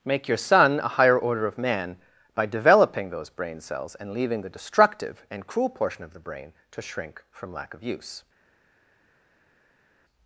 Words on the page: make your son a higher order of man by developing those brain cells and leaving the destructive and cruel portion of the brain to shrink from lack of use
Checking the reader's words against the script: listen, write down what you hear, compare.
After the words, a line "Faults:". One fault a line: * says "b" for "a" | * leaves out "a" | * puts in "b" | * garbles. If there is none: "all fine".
make your son a higher order of man by developing those brain cells and leaving the destructive and cruel portion of the brain to shrink from lack of use
Faults:
all fine